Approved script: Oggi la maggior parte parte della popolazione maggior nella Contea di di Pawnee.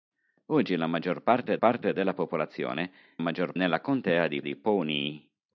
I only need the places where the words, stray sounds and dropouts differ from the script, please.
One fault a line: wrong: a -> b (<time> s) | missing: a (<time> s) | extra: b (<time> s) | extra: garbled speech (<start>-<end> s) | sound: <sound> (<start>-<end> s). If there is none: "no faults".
no faults